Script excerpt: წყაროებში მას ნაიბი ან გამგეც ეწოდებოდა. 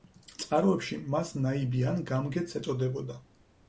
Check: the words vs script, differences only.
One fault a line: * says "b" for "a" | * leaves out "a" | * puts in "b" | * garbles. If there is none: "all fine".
all fine